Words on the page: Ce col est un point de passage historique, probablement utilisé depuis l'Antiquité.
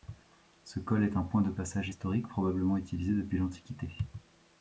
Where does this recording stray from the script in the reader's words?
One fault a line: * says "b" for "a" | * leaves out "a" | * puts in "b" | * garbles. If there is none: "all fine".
all fine